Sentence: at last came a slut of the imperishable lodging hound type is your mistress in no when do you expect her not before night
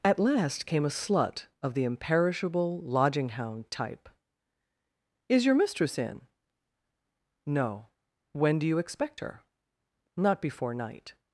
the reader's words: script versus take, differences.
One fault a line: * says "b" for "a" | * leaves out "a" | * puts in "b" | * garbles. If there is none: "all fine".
all fine